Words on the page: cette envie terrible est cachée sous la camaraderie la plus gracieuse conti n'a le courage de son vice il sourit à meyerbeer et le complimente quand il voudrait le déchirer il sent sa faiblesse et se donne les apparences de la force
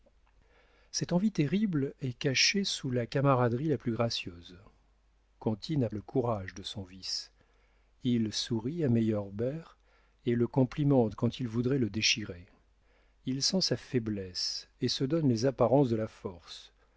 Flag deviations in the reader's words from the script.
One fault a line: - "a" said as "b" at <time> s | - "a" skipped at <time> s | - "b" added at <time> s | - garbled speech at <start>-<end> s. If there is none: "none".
none